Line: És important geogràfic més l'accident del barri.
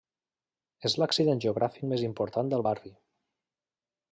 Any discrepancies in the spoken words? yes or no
yes